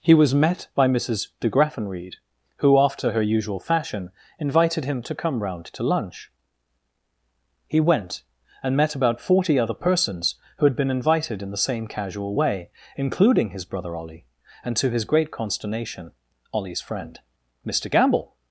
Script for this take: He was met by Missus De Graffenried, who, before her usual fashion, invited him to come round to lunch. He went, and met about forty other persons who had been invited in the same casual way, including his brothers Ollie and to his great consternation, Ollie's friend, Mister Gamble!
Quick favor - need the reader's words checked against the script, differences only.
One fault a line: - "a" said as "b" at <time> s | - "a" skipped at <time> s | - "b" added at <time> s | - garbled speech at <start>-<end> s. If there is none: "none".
- "before" said as "after" at 2.8 s
- "brothers" said as "brother" at 13.6 s